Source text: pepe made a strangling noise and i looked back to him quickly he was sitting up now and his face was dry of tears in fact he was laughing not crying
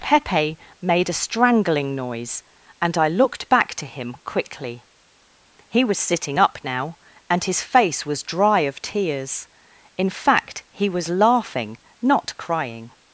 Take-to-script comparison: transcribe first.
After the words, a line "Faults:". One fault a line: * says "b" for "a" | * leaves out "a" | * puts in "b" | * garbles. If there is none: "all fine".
pepe made a strangling noise and i looked back to him quickly he was sitting up now and his face was dry of tears in fact he was laughing not crying
Faults:
all fine